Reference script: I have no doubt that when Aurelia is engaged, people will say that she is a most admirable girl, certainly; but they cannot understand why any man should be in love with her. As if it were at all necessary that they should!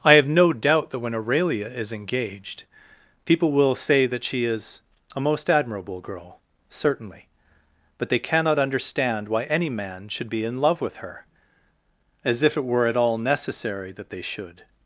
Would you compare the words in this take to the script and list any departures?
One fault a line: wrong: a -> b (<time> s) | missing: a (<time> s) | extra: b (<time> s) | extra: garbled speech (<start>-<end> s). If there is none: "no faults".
no faults